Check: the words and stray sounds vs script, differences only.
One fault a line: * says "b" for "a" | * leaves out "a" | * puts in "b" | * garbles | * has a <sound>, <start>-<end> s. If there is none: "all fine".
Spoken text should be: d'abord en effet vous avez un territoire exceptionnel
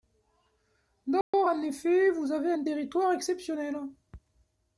* has a dropout, 1.2-1.3 s